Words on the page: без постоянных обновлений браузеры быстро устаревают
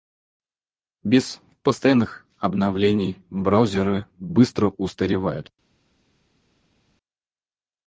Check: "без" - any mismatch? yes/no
no